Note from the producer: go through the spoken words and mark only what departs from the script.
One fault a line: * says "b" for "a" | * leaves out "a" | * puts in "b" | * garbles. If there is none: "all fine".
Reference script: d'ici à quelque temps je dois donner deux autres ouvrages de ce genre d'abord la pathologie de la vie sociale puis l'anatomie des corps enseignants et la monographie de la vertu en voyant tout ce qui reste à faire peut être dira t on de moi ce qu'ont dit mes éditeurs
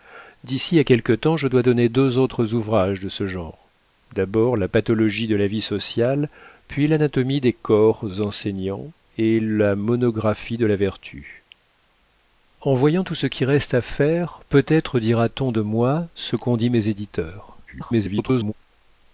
* garbles